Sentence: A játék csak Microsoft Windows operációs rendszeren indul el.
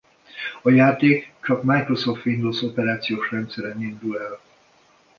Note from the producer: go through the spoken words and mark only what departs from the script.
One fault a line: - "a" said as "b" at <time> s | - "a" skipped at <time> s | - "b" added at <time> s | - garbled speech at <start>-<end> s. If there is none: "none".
none